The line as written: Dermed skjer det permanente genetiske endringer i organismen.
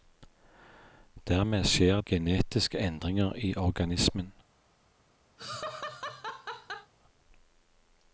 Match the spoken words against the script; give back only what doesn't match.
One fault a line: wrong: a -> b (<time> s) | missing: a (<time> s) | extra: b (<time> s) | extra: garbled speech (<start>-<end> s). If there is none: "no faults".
missing: det permanente (2.0 s)